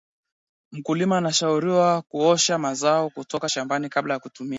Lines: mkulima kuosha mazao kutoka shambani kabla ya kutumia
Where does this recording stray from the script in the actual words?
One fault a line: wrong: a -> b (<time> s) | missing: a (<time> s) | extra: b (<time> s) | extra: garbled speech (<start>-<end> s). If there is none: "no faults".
extra: anashauriwa (1.2 s)